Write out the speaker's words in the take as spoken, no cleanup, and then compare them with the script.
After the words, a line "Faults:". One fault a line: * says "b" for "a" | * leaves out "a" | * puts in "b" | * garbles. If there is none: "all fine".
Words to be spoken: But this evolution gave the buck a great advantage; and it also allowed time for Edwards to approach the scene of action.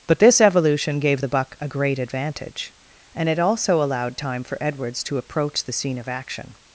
But this evolution gave the buck a great advantage; and it also allowed time for Edwards to approach the scene of action.
Faults:
all fine